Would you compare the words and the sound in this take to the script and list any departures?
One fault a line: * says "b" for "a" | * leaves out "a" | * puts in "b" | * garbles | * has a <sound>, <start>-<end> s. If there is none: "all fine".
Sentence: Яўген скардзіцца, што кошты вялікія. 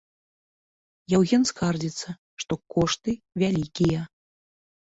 all fine